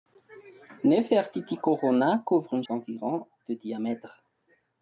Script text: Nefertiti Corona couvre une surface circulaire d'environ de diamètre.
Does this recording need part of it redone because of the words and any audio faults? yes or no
yes